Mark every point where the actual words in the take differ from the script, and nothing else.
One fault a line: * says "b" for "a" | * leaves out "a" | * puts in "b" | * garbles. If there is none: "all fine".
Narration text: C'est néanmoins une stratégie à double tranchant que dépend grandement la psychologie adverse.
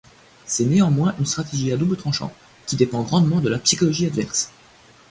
* says "qui" for "que"
* puts in "de"